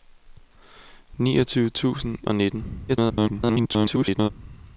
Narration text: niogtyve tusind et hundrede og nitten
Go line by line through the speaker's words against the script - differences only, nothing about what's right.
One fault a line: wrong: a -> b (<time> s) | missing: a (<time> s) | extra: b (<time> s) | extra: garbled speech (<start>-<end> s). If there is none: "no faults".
missing: et hundrede (2.2 s)
extra: garbled speech (2.9-4.3 s)